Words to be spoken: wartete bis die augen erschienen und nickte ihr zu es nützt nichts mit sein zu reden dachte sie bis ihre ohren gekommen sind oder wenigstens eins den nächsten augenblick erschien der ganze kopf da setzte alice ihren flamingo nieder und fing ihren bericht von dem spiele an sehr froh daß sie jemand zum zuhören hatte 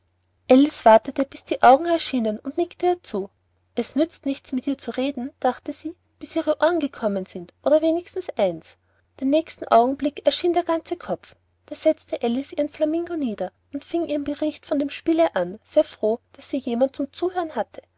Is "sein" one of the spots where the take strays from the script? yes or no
yes